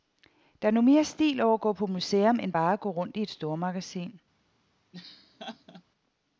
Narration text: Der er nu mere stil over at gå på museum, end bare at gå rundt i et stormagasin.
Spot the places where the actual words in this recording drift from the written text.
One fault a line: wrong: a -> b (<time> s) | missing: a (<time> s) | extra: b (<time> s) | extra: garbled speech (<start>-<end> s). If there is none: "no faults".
no faults